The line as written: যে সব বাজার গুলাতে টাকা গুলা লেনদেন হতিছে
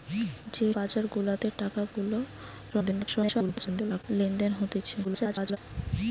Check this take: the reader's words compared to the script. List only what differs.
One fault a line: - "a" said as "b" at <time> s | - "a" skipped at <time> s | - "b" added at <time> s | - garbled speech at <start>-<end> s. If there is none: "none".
- "সব" skipped at 0.7 s
- garbled speech at 2.7-4.0 s
- garbled speech at 5.0-5.6 s